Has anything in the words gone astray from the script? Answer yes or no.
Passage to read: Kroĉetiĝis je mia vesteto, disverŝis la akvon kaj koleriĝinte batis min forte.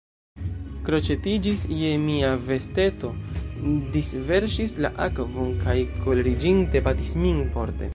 no